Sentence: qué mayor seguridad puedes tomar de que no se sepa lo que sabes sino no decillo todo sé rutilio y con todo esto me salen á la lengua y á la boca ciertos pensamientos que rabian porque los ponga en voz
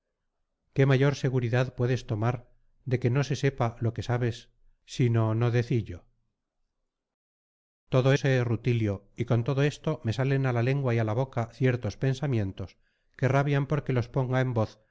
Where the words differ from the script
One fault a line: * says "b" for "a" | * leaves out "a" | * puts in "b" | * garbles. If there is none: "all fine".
all fine